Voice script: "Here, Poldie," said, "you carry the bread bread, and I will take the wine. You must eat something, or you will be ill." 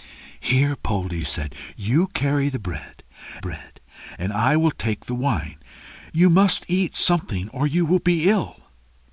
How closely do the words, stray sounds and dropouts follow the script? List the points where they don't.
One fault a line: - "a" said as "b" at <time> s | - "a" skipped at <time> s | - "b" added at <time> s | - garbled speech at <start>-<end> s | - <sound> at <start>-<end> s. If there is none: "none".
none